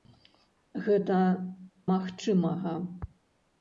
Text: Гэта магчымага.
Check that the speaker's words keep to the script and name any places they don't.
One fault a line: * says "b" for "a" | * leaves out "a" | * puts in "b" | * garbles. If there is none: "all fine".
all fine